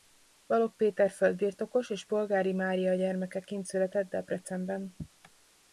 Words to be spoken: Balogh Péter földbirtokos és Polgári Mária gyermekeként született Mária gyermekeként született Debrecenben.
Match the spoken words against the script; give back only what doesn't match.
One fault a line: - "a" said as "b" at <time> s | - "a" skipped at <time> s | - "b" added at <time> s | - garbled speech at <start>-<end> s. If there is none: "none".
- "Mária gyermekeként született" skipped at 4.1 s